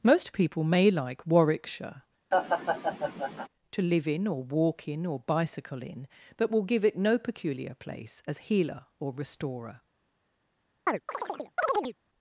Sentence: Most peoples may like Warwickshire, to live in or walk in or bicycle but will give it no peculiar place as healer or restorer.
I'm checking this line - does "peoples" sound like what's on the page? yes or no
no